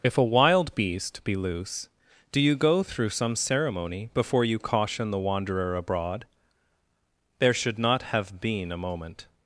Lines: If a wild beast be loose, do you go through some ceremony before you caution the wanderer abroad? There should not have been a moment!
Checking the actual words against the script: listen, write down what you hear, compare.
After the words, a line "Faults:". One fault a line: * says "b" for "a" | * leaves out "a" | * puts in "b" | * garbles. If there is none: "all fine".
If a wild beast be loose, do you go through some ceremony before you caution the wanderer abroad? There should not have been a moment!
Faults:
all fine